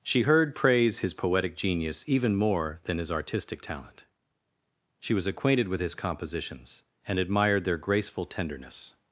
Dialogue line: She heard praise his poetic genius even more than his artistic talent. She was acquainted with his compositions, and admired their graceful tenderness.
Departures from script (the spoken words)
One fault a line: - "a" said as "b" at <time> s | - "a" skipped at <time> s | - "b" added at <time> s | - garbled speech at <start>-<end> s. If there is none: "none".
none